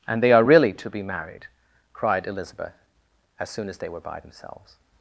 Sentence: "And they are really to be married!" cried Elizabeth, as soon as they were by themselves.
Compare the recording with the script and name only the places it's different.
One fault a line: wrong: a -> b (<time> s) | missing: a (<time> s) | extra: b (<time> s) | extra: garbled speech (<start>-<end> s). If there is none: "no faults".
no faults